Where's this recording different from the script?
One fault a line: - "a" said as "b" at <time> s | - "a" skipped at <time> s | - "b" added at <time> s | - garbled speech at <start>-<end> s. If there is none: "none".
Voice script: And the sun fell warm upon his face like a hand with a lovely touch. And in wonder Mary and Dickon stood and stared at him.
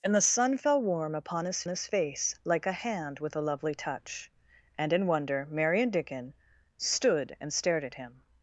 - "his" added at 1.7 s